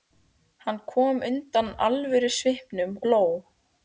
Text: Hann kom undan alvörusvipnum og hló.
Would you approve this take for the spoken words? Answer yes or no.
no